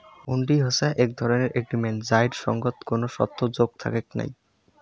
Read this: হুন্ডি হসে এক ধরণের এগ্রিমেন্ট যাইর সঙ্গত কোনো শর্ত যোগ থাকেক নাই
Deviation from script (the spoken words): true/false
false